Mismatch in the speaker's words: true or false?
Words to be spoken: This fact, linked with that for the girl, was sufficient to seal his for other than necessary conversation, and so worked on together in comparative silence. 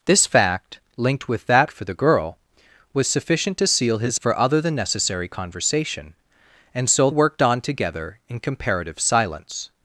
false